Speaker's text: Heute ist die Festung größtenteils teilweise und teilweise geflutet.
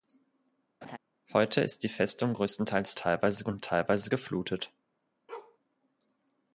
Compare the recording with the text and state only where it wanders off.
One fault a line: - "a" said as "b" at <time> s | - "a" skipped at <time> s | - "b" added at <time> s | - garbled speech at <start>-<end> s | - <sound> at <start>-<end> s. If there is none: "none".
- laugh at 0.8-1.0 s
- bark at 5.3-5.6 s